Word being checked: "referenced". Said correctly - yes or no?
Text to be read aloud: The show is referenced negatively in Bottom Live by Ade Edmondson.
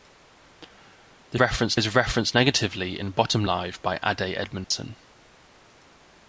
yes